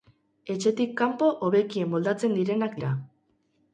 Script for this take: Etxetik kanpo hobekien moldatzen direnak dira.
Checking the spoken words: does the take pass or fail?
pass